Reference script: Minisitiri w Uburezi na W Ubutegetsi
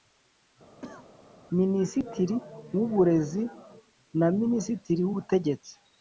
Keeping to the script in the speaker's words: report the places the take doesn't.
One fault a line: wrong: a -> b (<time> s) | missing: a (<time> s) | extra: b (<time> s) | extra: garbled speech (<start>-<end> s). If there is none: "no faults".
extra: Minisitiri (4.4 s)